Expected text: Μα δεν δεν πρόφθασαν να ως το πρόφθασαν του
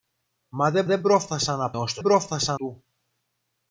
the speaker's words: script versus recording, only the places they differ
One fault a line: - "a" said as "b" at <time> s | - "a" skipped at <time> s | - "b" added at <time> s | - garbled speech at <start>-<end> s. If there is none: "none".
none